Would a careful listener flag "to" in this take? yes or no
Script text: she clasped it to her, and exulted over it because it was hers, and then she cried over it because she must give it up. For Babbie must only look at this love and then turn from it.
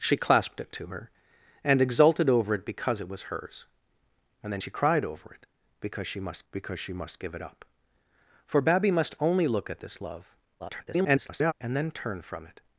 no